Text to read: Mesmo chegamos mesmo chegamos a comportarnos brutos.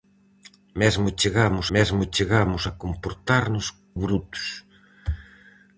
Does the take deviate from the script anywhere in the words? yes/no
no